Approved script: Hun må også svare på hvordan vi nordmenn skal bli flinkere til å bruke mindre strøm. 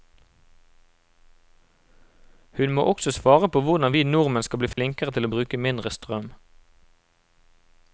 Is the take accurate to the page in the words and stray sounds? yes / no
no